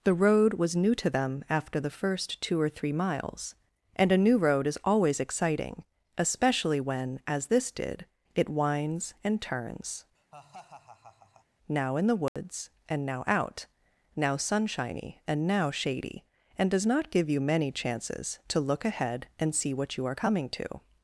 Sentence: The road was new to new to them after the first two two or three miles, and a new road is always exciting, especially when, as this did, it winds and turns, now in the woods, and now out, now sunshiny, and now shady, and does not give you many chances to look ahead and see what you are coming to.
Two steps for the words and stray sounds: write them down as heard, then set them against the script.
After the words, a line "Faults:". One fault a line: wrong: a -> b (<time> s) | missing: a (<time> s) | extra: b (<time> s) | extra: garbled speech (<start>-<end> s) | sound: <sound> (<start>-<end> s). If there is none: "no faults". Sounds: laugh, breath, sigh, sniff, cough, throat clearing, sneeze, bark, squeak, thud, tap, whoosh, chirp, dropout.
The road was new to them after the first two or three miles, and a new road is always exciting, especially when, as this did, it winds and turns, now in the woods, and now out, now sunshiny, and now shady, and does not give you many chances to look ahead and see what you are coming to.
Faults:
missing: new to (1.1 s)
missing: two (2.6 s)
sound: laugh (10.1-11.5 s)
sound: dropout (12.3-12.4 s)